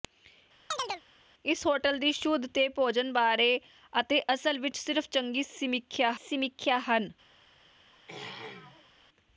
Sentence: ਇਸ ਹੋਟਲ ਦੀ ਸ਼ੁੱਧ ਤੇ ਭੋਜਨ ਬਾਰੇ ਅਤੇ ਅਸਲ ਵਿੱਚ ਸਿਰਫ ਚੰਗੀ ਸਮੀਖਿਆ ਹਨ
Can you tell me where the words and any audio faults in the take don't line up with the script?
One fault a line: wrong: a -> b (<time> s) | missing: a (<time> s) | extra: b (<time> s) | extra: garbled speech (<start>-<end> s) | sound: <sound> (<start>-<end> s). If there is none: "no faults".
sound: chirp (0.7-1.0 s)
extra: ਸਮੀਖਿਆ (6.1 s)
sound: throat clearing (7.9-8.9 s)